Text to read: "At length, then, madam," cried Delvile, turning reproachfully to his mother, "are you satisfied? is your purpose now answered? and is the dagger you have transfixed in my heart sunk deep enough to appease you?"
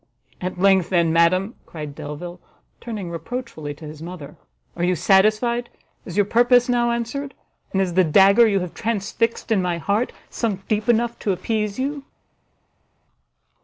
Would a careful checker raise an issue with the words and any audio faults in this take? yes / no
no